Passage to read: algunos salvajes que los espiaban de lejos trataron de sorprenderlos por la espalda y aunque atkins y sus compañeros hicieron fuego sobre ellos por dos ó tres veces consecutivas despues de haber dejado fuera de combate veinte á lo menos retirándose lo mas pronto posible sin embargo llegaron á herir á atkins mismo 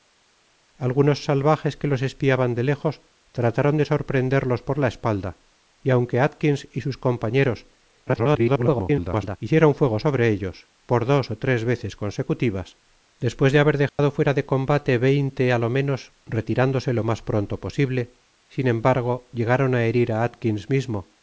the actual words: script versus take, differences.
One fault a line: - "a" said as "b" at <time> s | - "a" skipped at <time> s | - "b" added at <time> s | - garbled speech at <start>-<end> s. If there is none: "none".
- garbled speech at 8.1-9.4 s